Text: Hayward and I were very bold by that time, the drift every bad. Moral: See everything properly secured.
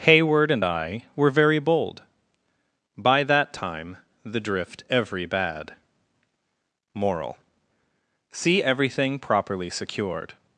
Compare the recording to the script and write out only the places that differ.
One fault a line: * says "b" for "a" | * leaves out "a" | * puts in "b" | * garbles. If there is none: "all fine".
all fine